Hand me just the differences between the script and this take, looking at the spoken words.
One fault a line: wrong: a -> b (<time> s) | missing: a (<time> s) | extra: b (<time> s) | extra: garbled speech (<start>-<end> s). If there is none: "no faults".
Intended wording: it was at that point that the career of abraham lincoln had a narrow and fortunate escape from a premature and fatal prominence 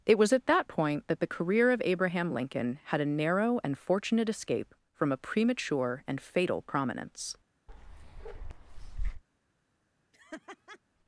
no faults